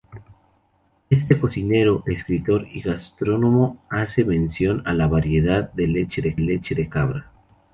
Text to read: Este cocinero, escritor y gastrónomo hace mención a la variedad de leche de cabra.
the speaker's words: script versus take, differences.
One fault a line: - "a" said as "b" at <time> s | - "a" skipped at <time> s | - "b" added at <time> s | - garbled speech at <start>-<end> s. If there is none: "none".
- "leche de" added at 6.4 s